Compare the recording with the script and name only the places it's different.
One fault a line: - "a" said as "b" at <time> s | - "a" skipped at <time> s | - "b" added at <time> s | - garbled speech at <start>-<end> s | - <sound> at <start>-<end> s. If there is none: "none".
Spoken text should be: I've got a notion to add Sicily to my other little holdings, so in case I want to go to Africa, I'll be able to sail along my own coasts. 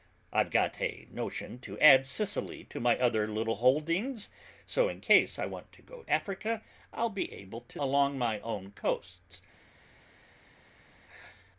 - "to" skipped at 6.1 s
- "sail" skipped at 7.8 s